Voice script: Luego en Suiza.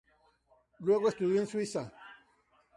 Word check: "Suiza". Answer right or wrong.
right